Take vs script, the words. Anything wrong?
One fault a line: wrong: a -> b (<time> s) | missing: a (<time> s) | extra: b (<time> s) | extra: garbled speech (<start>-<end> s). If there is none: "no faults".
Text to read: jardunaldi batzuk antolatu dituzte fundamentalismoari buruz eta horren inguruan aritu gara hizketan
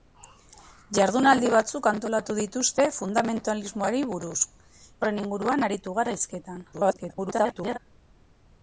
missing: eta (4.4 s)
extra: garbled speech (6.7-7.8 s)